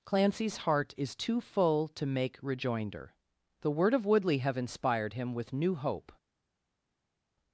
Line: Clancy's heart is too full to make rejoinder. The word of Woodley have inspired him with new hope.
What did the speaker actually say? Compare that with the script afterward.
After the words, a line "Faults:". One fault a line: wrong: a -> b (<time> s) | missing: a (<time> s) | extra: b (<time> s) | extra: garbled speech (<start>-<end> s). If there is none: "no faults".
Clancy's heart is too full to make rejoinder. The word of Woodley have inspired him with new hope.
Faults:
no faults